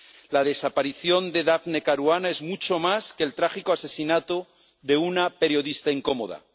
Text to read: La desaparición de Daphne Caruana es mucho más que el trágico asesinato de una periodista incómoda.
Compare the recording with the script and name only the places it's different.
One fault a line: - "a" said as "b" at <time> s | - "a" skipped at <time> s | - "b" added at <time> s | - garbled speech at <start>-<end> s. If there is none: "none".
none